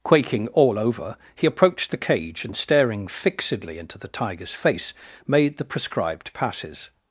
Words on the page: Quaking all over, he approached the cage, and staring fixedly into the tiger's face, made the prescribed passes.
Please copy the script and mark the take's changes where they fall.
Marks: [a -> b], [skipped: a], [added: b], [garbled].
Quaking all over, he approached the cage, and staring fixedly into the tiger's face, made the prescribed passes.